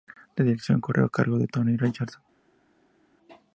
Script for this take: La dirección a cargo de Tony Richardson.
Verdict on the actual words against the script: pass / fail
fail